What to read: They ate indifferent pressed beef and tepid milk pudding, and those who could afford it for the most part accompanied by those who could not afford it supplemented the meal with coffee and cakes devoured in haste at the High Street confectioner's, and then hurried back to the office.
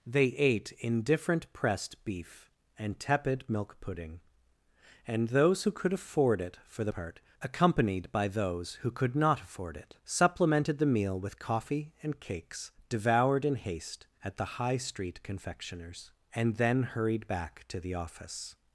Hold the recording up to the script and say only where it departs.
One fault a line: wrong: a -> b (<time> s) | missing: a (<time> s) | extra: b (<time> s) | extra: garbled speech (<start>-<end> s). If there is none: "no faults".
missing: most (6.9 s)